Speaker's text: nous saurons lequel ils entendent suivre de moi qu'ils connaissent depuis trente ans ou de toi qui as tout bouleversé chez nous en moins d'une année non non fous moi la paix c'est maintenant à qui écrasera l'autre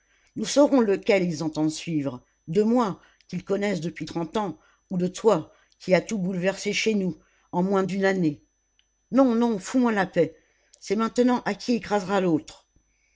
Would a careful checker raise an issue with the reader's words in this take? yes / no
no